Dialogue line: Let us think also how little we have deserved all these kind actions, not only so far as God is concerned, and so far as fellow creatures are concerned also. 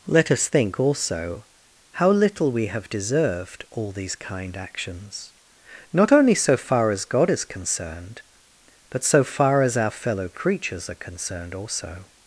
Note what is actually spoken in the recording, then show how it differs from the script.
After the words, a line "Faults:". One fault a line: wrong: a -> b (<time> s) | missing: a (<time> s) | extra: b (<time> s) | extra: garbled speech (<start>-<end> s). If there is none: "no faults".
Let us think also how little we have deserved all these kind actions, not only so far as God is concerned, but so far as our fellow creatures are concerned also.
Faults:
wrong: and -> but (8.9 s)
extra: our (9.8 s)